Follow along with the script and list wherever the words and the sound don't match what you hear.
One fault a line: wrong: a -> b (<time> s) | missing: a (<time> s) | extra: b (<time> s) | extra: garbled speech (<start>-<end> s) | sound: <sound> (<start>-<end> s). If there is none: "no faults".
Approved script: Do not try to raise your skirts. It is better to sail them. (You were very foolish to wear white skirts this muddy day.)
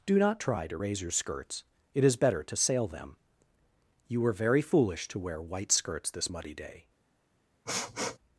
sound: sniff (7.7-8.2 s)